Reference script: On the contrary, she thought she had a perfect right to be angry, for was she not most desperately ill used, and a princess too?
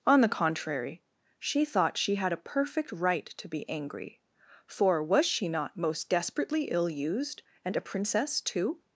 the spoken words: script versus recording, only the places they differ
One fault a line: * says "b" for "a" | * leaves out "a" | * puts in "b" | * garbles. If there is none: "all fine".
all fine